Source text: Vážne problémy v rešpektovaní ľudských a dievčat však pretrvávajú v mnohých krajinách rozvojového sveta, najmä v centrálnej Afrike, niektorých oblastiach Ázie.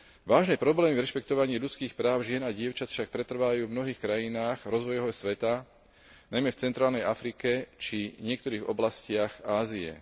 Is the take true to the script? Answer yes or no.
no